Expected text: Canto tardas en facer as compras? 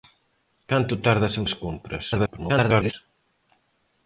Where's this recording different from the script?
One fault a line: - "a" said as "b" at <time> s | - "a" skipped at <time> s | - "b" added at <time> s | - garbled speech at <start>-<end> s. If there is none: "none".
- "facer" skipped at 1.4 s
- garbled speech at 2.1-2.9 s